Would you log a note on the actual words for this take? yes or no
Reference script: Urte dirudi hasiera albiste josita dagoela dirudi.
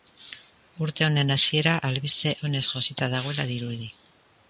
yes